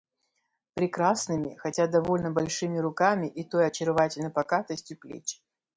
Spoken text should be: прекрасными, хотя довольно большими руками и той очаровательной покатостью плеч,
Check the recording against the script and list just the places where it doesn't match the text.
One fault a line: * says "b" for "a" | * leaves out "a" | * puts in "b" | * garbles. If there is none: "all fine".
all fine